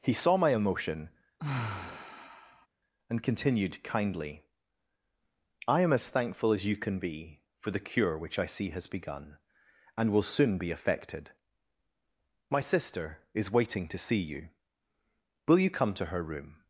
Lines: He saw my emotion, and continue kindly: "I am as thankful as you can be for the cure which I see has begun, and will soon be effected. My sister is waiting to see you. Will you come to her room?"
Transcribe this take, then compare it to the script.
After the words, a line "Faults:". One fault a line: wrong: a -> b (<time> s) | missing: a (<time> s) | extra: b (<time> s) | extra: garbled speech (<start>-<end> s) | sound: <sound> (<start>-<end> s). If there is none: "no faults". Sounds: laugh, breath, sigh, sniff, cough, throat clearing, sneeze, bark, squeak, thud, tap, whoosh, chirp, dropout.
He saw my emotion, and continued kindly: "I am as thankful as you can be for the cure which I see has begun, and will soon be effected. My sister is waiting to see you. Will you come to her room?"
Faults:
sound: sigh (1.4-2.7 s)
wrong: continue -> continued (3.2 s)